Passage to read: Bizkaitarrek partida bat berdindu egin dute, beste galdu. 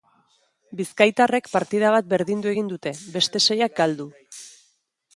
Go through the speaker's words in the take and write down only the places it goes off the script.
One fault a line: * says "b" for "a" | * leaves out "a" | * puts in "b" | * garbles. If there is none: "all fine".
* puts in "seiak"